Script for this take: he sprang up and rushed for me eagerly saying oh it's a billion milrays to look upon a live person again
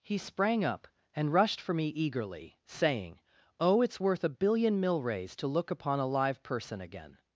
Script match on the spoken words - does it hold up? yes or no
no